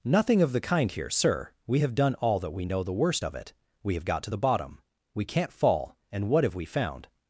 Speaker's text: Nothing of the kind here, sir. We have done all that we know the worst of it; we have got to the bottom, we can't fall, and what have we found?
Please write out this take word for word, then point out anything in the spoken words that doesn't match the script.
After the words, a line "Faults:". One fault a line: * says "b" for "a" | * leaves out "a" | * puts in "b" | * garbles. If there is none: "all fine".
Nothing of the kind here, sir. We have done all that we know the worst of it; we have got to the bottom, we can't fall, and what have we found?
Faults:
all fine